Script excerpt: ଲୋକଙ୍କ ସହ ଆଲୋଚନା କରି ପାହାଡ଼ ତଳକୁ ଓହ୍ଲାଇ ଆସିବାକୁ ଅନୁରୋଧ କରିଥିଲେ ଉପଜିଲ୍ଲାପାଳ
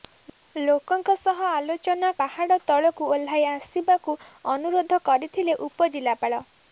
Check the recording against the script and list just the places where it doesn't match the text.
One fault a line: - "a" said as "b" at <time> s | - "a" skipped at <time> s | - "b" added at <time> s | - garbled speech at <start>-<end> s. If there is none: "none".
- "କରି" skipped at 2.1 s